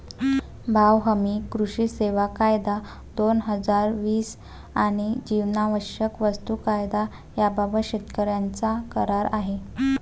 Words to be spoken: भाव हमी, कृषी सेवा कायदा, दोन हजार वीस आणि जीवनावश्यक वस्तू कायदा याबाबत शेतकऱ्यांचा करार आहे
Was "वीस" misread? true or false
false